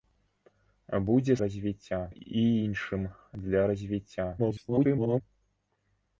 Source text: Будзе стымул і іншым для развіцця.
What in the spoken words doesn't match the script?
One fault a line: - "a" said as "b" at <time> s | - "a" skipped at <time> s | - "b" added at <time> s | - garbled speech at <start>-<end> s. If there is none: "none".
- "стымул" said as "развіцця" at 1.5 s
- garbled speech at 4.4-5.2 s